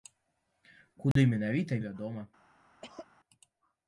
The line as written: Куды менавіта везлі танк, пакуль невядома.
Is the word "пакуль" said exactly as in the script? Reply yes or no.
no